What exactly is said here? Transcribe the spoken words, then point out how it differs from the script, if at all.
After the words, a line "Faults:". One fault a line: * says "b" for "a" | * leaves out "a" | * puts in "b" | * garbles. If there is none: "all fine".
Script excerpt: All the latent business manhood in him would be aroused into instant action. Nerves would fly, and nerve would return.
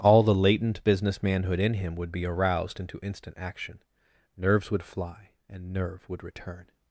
All the latent business manhood in him would be aroused into instant action. Nerves would fly, and nerve would return.
Faults:
all fine